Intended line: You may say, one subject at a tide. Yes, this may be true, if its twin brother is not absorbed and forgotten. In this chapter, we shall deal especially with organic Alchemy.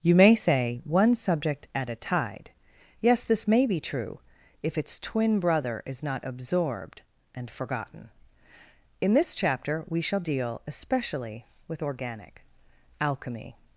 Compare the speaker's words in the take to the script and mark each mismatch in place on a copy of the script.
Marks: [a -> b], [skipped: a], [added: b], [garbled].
You may say, one subject at a tide. Yes, this may be true, if its twin brother is not absorbed and forgotten. In this chapter, we shall deal especially with organic Alchemy.